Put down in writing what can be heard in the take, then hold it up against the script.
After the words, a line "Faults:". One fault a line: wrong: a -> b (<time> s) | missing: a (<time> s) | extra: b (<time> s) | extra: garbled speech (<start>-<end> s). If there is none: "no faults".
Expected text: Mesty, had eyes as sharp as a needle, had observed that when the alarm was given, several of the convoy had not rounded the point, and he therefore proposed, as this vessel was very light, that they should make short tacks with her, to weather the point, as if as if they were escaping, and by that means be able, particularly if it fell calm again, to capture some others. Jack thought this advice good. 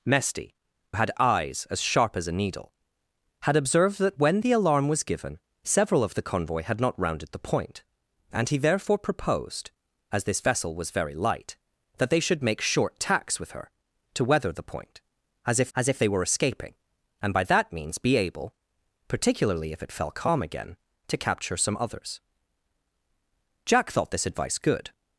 Mesty, had eyes as sharp as a needle, had observed that when the alarm was given, several of the convoy had not rounded the point, and he therefore proposed, as this vessel was very light, that they should make short tacks with her, to weather the point, as if as if they were escaping, and by that means be able, particularly if it fell calm again, to capture some others. Jack thought this advice good.
Faults:
no faults